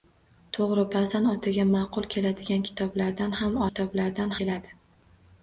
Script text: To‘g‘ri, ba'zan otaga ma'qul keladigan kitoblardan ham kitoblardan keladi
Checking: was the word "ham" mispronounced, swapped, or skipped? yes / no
no